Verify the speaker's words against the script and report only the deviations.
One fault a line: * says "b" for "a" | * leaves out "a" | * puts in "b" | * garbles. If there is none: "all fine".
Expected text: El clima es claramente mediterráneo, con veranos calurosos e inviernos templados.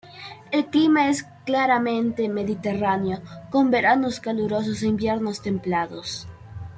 all fine